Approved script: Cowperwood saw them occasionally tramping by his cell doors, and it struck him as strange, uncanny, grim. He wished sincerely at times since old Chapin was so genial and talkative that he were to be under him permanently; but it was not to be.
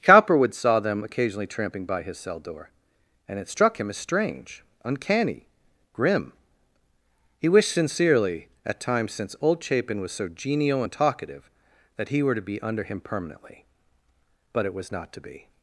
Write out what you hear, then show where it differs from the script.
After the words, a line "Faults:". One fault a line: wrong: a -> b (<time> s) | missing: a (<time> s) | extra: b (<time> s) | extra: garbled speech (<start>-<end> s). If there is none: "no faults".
Cowperwood saw them occasionally tramping by his cell door, and it struck him as strange, uncanny, grim. He wished sincerely at times since old Chapin was so genial and talkative that he were to be under him permanently; but it was not to be.
Faults:
wrong: doors -> door (2.4 s)